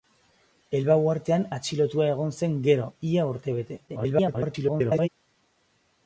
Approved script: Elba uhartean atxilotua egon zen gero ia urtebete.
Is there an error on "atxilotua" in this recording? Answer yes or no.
no